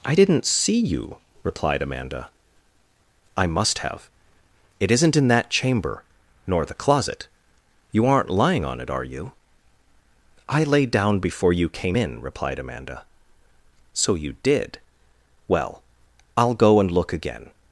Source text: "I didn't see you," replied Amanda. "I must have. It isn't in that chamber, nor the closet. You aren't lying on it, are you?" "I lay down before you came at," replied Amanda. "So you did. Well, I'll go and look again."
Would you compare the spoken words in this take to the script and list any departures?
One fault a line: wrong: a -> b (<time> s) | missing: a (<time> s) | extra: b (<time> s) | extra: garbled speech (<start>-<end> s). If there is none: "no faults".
wrong: at -> in (12.0 s)